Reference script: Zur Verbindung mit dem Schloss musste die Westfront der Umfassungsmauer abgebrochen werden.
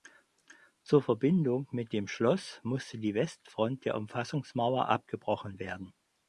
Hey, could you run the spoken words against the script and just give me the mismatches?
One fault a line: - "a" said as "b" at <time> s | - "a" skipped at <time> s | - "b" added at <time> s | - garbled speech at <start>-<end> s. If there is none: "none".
none